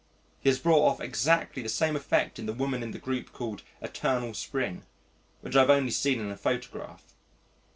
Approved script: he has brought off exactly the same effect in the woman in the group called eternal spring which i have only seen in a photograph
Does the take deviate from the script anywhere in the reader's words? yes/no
no